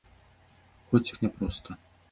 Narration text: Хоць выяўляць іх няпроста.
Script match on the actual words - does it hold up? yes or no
no